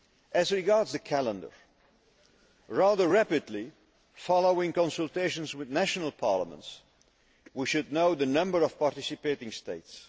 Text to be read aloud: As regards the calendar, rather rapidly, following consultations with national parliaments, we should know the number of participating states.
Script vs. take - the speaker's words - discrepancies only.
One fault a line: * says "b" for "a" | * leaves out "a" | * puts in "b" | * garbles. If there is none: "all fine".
all fine